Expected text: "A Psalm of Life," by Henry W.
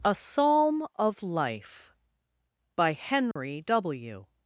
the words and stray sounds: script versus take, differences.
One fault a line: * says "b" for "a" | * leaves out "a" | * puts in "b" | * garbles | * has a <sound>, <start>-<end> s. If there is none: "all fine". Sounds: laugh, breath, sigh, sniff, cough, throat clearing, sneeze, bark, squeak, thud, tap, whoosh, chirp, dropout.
* has a dropout, 3.3-3.4 s